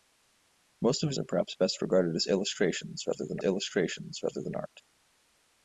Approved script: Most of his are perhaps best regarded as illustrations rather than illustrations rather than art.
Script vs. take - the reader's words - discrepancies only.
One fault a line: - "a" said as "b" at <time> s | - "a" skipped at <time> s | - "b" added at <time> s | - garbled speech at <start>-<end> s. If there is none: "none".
none